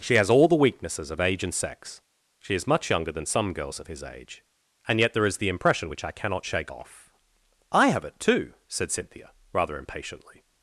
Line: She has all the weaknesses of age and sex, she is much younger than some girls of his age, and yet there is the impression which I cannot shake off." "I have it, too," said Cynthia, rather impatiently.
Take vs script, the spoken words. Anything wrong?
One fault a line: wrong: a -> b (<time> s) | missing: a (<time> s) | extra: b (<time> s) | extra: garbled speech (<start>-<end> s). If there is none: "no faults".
no faults